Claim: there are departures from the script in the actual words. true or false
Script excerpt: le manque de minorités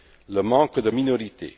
false